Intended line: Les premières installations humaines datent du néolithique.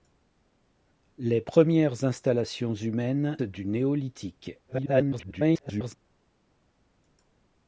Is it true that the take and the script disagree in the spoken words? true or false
true